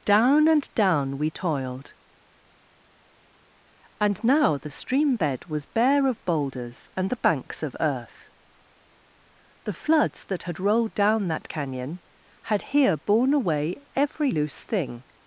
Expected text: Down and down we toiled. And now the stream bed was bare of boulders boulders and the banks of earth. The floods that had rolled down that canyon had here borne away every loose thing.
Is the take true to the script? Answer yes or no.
no